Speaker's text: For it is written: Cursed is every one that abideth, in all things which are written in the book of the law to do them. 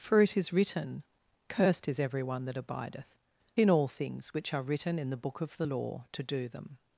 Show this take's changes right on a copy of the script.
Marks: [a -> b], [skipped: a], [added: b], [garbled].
For it is written: Cursed is every one that abideth, in all things which are written in the book of the law to do them.